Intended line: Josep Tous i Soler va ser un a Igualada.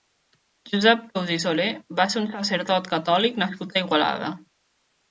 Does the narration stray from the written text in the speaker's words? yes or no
yes